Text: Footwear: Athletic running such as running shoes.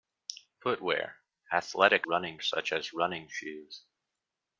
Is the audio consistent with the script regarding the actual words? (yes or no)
yes